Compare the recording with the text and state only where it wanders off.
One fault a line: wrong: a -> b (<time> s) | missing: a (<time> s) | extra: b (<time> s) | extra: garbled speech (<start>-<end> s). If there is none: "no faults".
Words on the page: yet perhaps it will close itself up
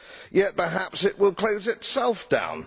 wrong: up -> down (2.3 s)